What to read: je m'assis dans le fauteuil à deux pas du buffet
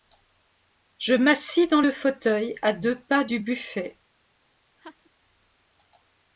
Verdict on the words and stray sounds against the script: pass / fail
fail